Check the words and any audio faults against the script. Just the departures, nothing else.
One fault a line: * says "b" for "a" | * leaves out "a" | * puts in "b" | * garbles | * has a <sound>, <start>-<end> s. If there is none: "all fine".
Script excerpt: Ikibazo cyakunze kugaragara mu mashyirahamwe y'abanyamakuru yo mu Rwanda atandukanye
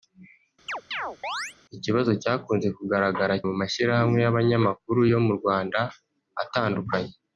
* has a chirp, 0.7-1.5 s